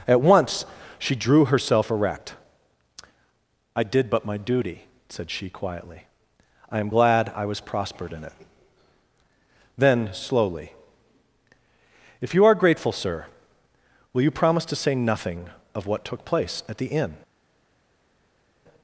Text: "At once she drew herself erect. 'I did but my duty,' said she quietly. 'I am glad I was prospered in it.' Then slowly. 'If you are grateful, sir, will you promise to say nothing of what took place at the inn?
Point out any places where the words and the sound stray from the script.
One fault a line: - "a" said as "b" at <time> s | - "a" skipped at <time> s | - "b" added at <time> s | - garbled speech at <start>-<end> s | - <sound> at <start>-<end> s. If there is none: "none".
none